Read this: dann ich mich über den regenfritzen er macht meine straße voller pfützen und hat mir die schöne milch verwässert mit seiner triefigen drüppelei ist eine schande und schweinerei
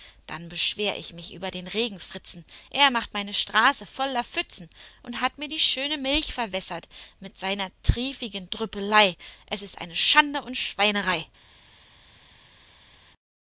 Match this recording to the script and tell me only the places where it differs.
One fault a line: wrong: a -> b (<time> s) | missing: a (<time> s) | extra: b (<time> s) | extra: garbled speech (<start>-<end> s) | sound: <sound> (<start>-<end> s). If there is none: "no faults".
extra: beschwer (0.5 s)
extra: es (9.5 s)